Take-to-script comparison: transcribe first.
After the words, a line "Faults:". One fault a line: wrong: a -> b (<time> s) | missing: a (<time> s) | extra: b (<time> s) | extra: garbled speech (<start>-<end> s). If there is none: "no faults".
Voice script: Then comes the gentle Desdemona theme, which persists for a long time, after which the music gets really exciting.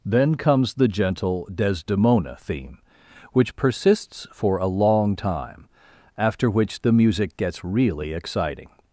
Then comes the gentle Desdemona theme, which persists for a long time, after which the music gets really exciting.
Faults:
no faults